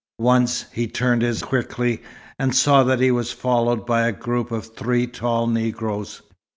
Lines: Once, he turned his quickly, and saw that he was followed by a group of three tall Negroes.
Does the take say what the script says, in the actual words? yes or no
yes